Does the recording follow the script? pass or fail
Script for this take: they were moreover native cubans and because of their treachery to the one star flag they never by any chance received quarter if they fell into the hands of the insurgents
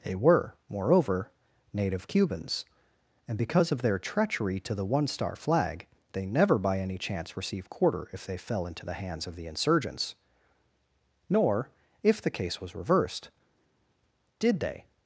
fail